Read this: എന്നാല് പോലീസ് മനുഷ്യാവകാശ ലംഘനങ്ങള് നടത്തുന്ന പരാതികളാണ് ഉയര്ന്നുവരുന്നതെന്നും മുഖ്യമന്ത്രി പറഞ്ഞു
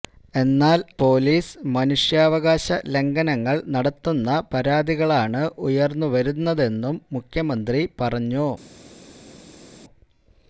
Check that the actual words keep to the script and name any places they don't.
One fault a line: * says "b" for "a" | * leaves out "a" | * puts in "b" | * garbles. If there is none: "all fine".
all fine